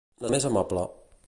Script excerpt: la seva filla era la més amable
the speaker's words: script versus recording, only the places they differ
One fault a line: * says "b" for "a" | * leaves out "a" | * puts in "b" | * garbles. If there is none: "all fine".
* leaves out "seva filla era"